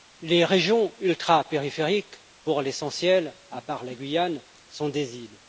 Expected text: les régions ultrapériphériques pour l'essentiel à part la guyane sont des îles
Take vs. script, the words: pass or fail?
pass